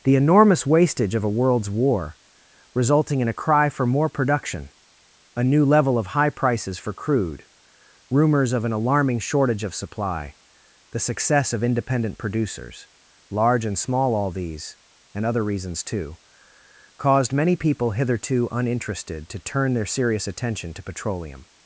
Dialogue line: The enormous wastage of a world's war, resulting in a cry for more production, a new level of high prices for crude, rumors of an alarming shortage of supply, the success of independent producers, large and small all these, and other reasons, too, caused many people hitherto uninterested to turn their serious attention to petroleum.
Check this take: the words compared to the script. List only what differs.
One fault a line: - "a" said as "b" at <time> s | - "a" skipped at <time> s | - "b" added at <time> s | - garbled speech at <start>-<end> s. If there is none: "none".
none